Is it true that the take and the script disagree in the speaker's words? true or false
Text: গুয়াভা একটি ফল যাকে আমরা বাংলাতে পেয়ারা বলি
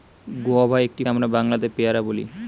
true